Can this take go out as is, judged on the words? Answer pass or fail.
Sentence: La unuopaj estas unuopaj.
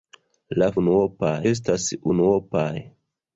pass